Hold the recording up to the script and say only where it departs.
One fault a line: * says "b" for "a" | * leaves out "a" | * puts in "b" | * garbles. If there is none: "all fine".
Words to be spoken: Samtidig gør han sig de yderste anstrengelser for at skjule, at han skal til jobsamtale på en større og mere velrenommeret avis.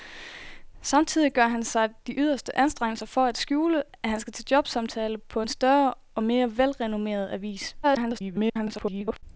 * garbles